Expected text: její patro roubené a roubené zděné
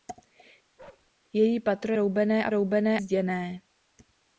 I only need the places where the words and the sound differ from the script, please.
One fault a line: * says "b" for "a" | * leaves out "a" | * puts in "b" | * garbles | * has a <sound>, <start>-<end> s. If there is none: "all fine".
* has a bark, 0.8-1.1 s